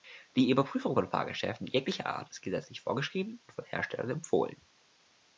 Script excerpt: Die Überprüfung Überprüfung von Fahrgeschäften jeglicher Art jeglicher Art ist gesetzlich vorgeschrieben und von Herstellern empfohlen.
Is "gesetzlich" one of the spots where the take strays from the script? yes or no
no